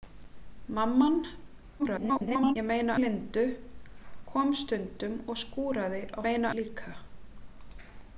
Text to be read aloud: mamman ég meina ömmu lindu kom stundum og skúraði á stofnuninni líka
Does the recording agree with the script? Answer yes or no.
no